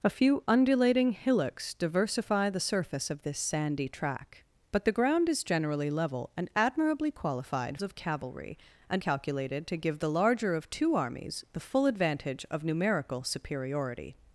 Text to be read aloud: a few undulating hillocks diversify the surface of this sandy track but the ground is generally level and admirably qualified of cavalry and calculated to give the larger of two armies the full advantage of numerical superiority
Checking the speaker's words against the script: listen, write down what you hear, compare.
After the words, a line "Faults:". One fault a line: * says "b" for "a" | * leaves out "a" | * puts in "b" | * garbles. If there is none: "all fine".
a few undulating hillocks diversify the surface of this sandy track but the ground is generally level and admirably qualified of cavalry and calculated to give the larger of two armies the full advantage of numerical superiority
Faults:
all fine